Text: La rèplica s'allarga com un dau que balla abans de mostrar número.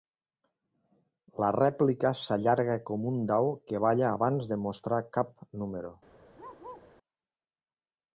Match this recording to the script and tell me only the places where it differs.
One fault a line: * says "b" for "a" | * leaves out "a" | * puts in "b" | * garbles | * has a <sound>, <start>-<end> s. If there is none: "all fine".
* puts in "cap"
* has a bark, 6.4-6.9 s